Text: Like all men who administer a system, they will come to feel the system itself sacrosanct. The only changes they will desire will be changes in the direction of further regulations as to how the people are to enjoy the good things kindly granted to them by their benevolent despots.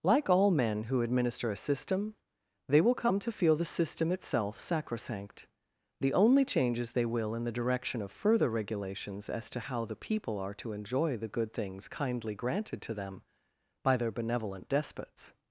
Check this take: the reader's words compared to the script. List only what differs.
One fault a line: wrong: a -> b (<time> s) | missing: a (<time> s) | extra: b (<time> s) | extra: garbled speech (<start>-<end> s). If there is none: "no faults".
missing: desire will be changes (7.3 s)